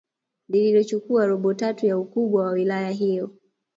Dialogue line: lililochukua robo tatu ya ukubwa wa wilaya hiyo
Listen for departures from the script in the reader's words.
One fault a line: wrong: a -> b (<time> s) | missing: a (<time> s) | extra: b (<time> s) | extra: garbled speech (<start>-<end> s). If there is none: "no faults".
no faults